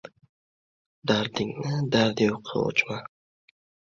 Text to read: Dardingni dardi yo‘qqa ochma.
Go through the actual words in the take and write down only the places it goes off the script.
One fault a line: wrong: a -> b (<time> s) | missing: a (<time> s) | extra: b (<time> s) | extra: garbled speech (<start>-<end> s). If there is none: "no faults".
no faults